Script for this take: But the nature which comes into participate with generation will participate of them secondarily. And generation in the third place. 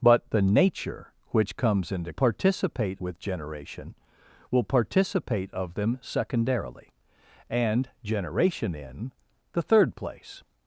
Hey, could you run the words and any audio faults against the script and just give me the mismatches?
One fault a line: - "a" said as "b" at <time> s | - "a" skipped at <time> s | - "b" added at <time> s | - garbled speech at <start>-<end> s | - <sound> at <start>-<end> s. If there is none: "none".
none